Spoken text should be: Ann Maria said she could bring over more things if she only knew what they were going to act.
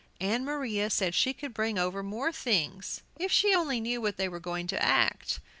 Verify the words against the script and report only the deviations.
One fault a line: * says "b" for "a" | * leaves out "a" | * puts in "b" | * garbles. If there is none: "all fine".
all fine